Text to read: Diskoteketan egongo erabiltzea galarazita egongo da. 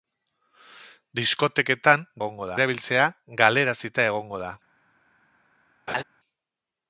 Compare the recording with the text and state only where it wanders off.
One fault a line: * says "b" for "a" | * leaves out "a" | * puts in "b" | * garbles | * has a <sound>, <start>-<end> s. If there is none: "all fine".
* has a laugh, 5.9-6.0 s